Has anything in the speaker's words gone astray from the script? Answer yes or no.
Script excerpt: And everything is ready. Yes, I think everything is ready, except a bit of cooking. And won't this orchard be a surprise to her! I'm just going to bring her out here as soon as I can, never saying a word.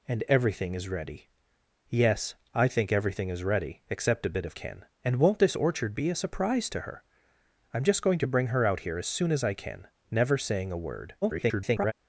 yes